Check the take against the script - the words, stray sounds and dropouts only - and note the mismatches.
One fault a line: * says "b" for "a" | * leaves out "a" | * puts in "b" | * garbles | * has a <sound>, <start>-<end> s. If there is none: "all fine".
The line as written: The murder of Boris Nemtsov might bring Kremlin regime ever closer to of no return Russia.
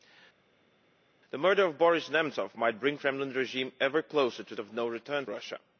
all fine